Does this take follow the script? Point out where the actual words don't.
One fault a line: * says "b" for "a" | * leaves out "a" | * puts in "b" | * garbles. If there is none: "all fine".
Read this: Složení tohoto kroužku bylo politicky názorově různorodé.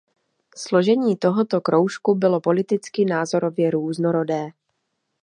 all fine